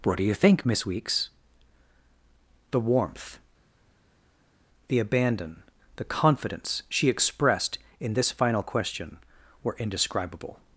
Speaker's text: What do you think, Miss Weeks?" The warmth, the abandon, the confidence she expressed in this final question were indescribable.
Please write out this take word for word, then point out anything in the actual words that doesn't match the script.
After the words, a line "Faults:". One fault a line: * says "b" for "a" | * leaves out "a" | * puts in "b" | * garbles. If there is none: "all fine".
What do you think, Miss Weeks?" The warmth, the abandon, the confidence she expressed in this final question were indescribable.
Faults:
all fine